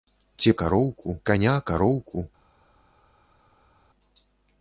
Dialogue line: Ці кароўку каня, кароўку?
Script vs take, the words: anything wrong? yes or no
no